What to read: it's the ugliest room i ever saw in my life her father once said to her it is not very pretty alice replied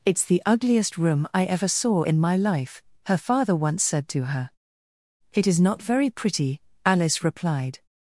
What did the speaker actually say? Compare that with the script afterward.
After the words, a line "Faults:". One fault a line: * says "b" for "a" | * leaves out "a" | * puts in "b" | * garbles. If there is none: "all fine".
it's the ugliest room i ever saw in my life her father once said to her it is not very pretty alice replied
Faults:
all fine